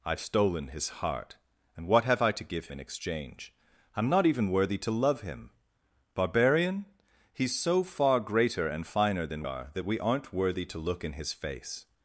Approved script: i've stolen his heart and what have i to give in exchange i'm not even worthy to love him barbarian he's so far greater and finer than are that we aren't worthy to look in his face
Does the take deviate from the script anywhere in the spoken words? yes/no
no